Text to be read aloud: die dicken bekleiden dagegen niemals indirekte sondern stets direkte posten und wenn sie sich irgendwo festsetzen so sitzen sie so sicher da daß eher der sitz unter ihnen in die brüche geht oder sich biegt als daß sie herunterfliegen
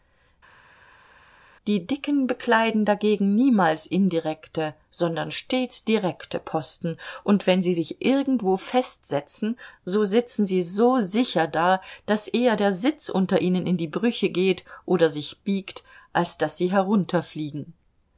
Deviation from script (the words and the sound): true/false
false